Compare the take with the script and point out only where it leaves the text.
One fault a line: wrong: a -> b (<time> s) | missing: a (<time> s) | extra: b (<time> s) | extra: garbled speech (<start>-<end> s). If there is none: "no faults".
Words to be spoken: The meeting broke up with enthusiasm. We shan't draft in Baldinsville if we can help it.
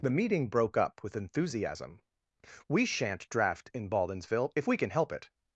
no faults